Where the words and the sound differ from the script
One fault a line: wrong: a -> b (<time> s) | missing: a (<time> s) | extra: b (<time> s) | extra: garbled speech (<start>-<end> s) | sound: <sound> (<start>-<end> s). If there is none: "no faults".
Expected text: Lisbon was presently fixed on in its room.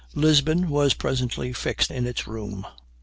missing: on (1.9 s)